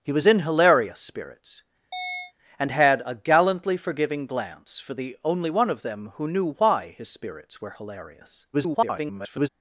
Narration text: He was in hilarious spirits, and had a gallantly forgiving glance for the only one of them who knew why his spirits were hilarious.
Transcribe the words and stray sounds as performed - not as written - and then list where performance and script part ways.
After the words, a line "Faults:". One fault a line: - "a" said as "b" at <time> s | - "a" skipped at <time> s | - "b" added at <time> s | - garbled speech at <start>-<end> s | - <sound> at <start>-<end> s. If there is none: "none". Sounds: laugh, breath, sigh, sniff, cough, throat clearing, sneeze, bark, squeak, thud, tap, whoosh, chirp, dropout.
He was in hilarious spirits, and had a gallantly forgiving glance for the only one of them who knew why his spirits were hilarious. [garbled]
Faults:
- chirp at 1.9-2.3 s
- garbled speech at 8.5-9.5 s